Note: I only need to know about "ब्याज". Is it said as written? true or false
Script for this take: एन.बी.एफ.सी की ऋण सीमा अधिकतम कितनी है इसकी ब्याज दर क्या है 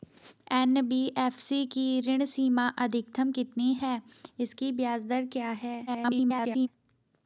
true